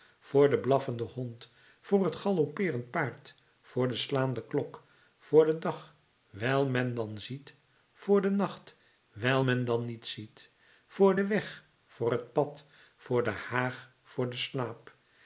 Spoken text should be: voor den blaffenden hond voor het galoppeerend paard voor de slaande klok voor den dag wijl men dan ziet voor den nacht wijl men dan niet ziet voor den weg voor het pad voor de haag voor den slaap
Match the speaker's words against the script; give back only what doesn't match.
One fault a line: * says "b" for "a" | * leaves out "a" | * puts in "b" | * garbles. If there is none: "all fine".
all fine